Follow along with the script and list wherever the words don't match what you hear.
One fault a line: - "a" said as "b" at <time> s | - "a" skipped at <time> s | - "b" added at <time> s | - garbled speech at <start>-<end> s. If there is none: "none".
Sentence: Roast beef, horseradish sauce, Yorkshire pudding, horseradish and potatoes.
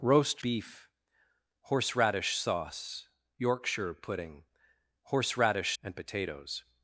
none